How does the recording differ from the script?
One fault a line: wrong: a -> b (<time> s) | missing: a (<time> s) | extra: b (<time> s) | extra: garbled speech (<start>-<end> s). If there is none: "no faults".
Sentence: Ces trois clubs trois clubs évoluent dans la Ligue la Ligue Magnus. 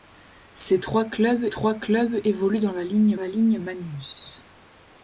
no faults